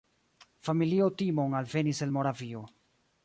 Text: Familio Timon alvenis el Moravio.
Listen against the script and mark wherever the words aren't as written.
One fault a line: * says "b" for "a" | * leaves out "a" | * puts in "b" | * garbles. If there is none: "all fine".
all fine